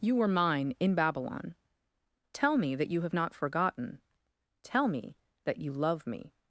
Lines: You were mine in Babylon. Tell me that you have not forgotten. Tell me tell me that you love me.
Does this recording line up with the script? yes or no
no